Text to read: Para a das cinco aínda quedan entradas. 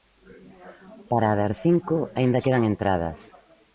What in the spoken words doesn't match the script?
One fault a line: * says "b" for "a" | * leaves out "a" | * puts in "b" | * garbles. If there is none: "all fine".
all fine